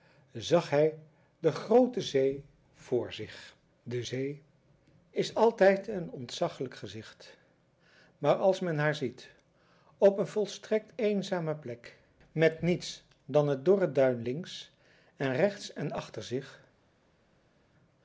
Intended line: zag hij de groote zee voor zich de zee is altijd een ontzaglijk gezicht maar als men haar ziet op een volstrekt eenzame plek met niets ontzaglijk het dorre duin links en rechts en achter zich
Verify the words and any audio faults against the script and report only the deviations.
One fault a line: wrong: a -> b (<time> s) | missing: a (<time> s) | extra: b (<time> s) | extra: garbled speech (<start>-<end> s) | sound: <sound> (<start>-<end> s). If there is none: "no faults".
wrong: ontzaglijk -> dan (13.2 s)